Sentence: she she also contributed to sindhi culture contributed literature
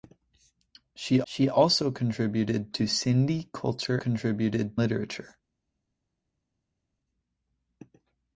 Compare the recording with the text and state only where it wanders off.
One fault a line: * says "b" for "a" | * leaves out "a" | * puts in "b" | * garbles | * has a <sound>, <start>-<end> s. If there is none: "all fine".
all fine